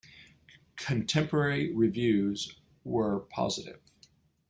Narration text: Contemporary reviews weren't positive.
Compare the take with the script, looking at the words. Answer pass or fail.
fail